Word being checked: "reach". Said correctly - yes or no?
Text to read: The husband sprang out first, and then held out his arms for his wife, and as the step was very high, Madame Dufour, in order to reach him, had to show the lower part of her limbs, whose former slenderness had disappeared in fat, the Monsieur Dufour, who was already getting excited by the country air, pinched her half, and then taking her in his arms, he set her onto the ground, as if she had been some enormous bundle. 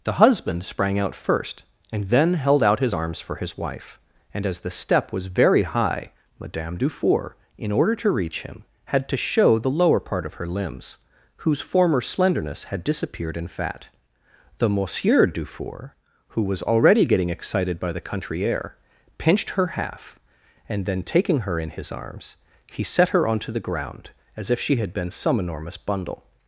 yes